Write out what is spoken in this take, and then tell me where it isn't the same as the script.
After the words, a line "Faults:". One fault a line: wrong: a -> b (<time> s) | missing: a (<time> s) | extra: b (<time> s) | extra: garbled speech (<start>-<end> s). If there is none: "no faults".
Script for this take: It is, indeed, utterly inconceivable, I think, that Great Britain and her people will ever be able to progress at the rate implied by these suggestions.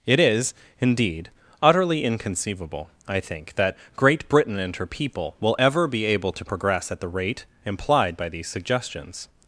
It is, indeed, utterly inconceivable, I think, that Great Britain and her people will ever be able to progress at the rate implied by these suggestions.
Faults:
no faults